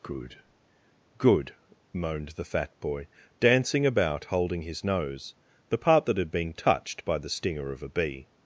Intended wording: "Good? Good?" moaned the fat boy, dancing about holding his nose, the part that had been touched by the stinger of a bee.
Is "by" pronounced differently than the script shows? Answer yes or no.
no